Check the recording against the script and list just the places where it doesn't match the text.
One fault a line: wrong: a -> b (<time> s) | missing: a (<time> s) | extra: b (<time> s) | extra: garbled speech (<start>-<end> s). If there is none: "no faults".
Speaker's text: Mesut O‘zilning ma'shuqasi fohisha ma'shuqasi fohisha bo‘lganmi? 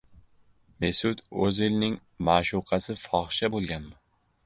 missing: ma'shuqasi fohisha (3.5 s)